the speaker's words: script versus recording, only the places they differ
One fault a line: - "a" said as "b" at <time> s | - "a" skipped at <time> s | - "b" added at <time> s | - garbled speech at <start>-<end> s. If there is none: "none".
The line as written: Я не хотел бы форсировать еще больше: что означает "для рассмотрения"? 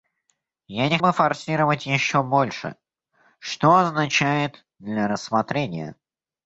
- "хотел" skipped at 1.0 s